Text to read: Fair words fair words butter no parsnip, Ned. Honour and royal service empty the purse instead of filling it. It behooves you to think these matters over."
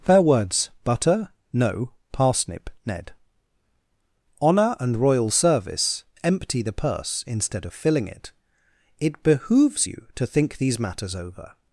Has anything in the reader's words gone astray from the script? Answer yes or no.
yes